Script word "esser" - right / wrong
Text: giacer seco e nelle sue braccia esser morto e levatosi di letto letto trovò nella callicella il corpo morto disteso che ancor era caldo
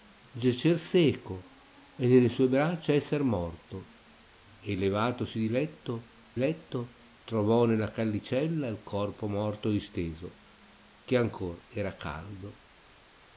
right